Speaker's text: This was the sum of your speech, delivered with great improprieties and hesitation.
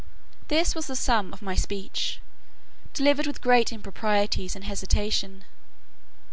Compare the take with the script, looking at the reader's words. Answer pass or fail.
fail